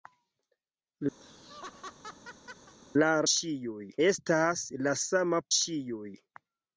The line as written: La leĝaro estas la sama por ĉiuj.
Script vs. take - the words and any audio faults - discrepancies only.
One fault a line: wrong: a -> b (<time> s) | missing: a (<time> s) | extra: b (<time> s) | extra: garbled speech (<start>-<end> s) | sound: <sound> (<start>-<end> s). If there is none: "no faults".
sound: laugh (1.2-2.7 s)
wrong: leĝaro -> ĉiuj (3.3 s)
missing: por (5.4 s)